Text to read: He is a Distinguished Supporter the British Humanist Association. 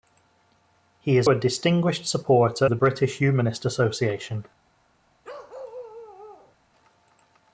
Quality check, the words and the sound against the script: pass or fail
fail